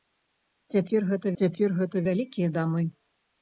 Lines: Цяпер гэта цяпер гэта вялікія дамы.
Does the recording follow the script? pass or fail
pass